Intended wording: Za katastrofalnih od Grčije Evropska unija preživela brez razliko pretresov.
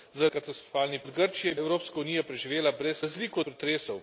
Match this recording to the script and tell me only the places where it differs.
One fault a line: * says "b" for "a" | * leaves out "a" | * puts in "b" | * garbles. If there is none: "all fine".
all fine